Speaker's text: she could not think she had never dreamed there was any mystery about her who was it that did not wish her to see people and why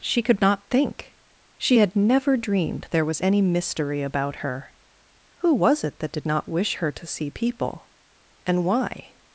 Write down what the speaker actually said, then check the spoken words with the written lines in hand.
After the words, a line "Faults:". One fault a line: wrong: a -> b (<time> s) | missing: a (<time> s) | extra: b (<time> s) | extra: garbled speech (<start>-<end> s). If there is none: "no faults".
she could not think she had never dreamed there was any mystery about her who was it that did not wish her to see people and why
Faults:
no faults